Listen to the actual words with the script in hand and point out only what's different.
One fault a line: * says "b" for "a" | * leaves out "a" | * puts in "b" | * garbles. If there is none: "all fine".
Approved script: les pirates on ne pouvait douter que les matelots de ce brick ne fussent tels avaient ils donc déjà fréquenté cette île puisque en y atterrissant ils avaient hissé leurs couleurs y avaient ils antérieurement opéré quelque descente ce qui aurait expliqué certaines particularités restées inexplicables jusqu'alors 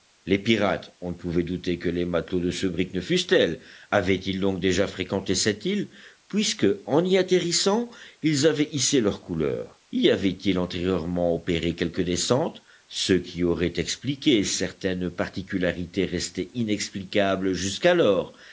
all fine